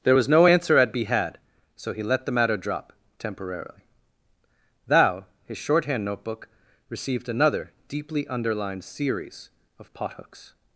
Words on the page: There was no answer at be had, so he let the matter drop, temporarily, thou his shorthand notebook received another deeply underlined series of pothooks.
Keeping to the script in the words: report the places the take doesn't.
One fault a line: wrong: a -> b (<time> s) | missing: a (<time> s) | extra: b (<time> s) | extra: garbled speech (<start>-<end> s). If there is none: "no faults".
no faults